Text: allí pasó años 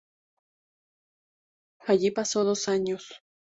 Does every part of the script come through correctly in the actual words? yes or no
no